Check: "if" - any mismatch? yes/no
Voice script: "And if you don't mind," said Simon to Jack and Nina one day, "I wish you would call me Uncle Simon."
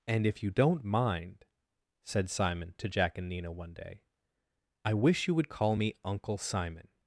no